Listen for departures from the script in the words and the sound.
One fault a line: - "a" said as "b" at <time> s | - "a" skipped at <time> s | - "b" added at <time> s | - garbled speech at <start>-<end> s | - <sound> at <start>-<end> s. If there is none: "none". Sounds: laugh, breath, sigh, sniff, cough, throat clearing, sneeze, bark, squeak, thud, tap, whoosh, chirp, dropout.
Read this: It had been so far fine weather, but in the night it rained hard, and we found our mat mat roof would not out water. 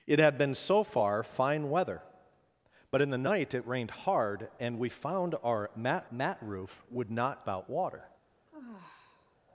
- sigh at 8.5-9.4 s